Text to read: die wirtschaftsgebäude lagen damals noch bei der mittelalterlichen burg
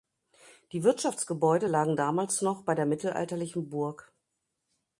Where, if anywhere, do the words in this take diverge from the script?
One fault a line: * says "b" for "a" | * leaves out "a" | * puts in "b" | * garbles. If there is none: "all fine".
all fine